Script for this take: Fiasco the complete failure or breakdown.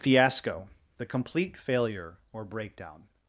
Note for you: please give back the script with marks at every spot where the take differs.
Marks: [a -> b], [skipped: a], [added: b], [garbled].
Fiasco the complete failure or breakdown.